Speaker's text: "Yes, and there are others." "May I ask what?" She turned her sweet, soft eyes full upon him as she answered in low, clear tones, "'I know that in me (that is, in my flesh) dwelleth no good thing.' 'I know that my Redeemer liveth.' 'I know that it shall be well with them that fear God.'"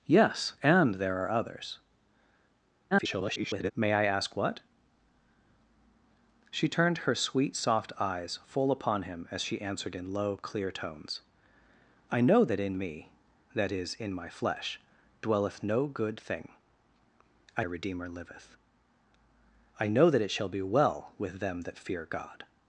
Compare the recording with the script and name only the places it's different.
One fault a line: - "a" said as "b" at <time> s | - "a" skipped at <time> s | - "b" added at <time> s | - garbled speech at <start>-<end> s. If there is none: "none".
- garbled speech at 2.9-3.7 s
- "know that my" skipped at 17.7 s